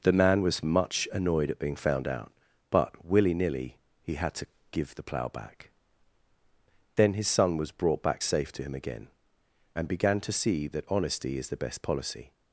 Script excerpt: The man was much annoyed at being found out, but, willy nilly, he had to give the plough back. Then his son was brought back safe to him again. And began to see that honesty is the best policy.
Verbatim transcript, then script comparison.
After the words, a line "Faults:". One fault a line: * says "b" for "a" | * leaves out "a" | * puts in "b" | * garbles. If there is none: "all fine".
The man was much annoyed at being found out, but, willy nilly, he had to give the plough back. Then his son was brought back safe to him again. And began to see that honesty is the best policy.
Faults:
all fine